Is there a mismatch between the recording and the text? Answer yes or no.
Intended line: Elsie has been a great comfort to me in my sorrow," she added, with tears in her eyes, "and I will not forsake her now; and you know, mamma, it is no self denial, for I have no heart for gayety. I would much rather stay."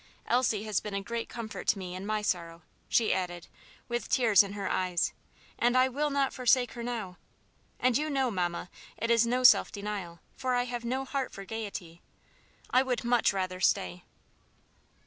no